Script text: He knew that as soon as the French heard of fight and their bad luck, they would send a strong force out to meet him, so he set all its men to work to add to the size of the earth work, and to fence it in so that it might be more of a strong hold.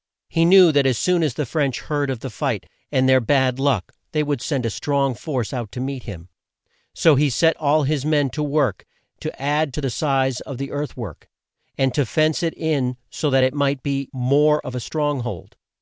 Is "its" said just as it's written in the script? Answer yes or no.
no